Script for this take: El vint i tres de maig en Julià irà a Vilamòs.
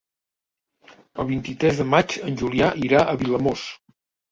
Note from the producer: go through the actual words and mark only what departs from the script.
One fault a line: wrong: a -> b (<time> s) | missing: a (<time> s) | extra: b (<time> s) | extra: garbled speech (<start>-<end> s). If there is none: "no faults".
no faults